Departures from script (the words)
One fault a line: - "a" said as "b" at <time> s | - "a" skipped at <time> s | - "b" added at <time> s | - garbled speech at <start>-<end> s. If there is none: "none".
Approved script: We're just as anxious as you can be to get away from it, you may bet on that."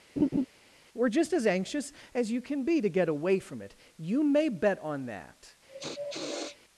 none